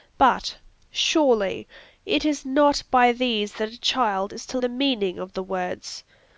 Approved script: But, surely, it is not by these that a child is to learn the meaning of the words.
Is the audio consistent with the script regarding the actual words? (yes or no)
no